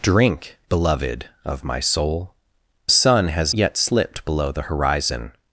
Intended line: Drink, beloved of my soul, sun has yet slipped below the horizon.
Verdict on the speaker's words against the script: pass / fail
pass